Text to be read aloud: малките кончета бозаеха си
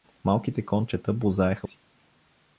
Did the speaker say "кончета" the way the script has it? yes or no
yes